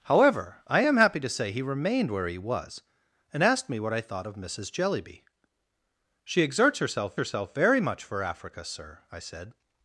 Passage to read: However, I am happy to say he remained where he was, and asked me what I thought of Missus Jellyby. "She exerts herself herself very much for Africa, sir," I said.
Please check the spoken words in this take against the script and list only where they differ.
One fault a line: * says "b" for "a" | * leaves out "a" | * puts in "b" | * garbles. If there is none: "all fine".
all fine